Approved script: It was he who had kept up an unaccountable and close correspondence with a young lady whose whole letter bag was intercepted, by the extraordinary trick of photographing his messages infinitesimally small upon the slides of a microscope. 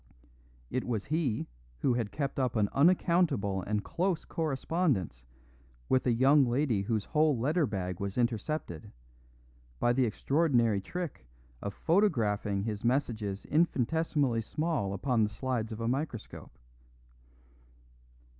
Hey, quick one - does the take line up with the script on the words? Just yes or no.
yes